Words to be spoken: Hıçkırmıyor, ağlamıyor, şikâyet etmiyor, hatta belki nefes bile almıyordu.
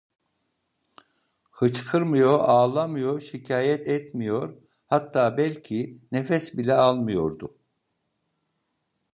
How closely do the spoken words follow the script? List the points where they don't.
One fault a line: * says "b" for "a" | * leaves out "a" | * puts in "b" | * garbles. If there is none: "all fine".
all fine